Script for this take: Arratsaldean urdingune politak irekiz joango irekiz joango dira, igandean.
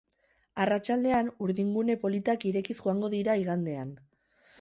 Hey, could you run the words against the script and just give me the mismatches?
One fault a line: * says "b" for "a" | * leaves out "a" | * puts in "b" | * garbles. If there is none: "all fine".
* leaves out "irekiz joango"